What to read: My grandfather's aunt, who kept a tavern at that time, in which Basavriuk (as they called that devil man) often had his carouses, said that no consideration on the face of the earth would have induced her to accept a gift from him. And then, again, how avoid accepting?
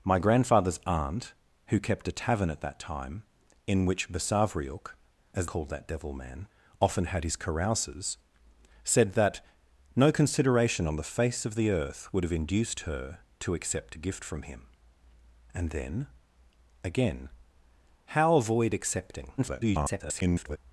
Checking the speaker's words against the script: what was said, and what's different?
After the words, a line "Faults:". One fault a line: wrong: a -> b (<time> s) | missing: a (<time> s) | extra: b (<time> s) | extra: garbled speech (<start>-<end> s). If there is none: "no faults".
My grandfather's aunt, who kept a tavern at that time, in which Basavriuk (as called that devil man) often had his carouses, said that no consideration on the face of the earth would have induced her to accept a gift from him. And then, again, how avoid accepting? [garbled]
Faults:
missing: they (5.5 s)
extra: garbled speech (19.4-20.6 s)